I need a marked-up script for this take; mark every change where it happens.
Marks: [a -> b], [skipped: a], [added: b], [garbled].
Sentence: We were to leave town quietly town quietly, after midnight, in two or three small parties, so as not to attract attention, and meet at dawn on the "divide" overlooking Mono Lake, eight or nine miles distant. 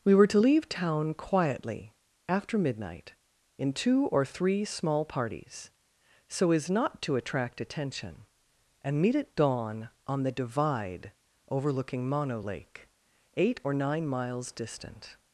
We were to leave town quietly [skipped: town quietly,] after midnight, in two or three small parties, so as not to attract attention, and meet at dawn on the "divide" overlooking Mono Lake, eight or nine miles distant.